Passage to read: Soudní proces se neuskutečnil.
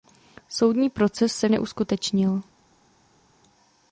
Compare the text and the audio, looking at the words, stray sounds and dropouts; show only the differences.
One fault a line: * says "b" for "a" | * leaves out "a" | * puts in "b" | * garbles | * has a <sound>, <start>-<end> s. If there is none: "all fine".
all fine